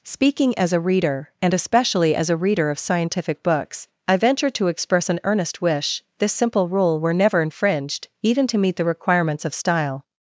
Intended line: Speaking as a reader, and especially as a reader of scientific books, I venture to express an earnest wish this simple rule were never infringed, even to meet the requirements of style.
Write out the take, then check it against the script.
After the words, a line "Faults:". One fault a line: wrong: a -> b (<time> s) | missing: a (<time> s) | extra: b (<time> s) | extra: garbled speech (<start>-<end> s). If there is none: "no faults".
Speaking as a reader, and especially as a reader of scientific books, I venture to express an earnest wish this simple rule were never infringed, even to meet the requirements of style.
Faults:
no faults